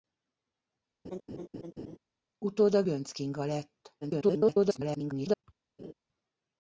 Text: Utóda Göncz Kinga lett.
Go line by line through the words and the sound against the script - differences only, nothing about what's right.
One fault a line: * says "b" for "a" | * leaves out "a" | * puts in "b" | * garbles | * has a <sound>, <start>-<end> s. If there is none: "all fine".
* has a laugh, 1.0-2.0 s
* garbles
* has a laugh, 5.8-5.9 s